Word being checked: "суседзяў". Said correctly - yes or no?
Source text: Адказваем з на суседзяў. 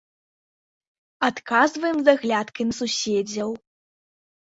yes